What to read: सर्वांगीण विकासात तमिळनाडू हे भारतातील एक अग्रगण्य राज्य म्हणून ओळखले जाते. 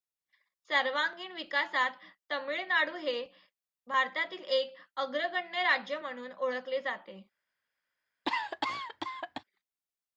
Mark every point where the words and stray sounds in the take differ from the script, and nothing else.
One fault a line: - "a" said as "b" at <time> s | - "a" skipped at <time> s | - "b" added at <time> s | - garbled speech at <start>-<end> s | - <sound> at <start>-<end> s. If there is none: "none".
- cough at 8.3-9.4 s